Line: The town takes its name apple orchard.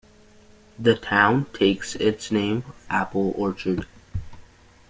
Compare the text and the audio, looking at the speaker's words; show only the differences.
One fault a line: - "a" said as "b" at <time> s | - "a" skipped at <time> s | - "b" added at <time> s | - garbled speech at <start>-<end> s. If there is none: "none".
none